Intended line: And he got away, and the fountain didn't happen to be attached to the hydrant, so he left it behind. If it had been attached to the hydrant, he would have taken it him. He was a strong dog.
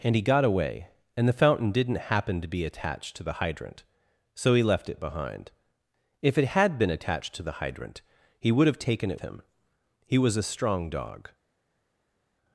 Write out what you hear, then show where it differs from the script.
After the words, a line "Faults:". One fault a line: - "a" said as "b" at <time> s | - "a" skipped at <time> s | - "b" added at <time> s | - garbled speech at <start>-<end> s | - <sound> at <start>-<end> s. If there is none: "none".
And he got away, and the fountain didn't happen to be attached to the hydrant, so he left it behind. If it had been attached to the hydrant, he would have taken it him. He was a strong dog.
Faults:
none